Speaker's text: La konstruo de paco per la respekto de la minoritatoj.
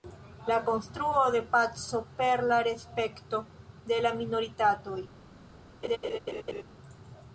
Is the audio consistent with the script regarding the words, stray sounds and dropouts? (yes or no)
no